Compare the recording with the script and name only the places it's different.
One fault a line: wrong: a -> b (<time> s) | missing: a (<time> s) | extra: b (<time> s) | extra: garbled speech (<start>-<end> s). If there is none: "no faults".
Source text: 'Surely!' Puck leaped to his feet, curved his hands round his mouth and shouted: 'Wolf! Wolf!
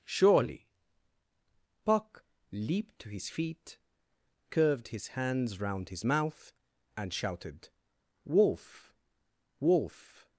no faults